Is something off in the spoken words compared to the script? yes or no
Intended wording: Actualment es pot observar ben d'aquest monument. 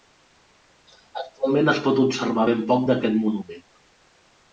yes